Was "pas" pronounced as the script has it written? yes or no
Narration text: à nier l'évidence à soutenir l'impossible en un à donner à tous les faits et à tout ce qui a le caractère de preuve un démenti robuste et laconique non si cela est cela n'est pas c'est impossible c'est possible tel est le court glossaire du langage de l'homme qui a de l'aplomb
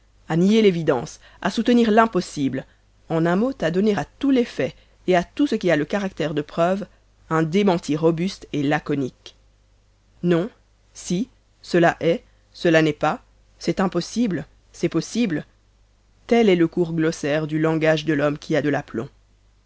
yes